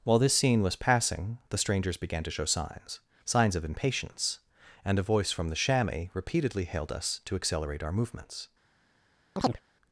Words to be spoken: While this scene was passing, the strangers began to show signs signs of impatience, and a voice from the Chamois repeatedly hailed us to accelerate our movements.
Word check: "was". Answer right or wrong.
right